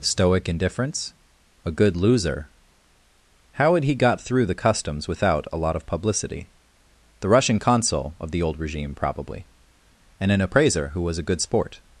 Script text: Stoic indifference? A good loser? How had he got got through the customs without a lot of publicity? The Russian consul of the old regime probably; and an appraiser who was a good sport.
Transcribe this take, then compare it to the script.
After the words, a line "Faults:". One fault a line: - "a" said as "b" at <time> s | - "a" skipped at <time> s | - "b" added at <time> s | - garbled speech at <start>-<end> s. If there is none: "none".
Stoic indifference? A good loser? How had he got through the customs without a lot of publicity? The Russian consul of the old regime probably; and an appraiser who was a good sport.
Faults:
- "got" skipped at 4.2 s